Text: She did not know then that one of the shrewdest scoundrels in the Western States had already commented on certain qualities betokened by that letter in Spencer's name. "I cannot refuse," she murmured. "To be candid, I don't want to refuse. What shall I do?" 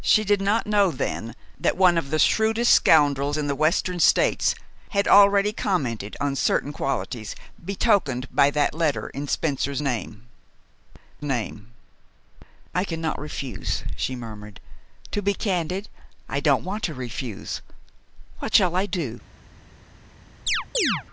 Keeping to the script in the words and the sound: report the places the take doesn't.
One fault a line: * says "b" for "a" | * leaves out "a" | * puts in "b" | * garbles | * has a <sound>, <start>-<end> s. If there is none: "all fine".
* puts in "name"
* has a chirp, 20.5-21.0 s